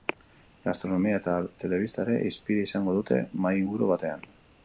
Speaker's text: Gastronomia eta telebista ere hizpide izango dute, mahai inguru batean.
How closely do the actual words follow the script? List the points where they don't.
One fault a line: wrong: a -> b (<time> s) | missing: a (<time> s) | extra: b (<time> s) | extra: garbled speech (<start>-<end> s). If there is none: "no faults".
no faults